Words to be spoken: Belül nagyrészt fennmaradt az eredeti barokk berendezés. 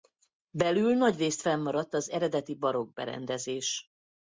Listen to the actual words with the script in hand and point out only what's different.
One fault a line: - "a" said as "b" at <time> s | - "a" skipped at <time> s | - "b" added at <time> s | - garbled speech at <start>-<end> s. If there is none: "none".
none